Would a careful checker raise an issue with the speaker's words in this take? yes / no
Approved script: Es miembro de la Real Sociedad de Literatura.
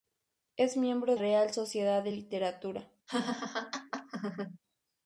yes